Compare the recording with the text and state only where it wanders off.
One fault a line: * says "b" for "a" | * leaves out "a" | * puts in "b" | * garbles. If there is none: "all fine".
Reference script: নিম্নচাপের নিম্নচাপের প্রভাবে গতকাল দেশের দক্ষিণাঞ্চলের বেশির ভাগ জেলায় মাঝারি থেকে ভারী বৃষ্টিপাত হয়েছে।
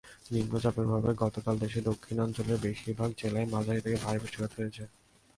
* leaves out "নিম্নচাপের"